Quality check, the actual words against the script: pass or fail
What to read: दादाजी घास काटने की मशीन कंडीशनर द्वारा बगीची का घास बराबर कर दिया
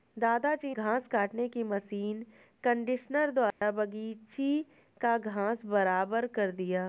pass